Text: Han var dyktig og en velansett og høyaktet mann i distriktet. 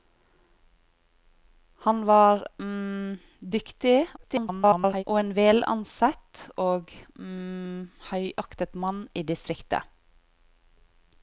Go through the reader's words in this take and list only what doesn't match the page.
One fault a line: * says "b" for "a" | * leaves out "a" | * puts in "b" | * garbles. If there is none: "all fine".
* garbles